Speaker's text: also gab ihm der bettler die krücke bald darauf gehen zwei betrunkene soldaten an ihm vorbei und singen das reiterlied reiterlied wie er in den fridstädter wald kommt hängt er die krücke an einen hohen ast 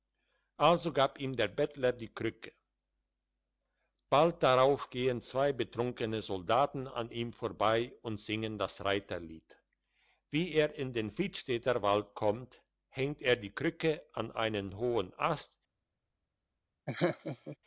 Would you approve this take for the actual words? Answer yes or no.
no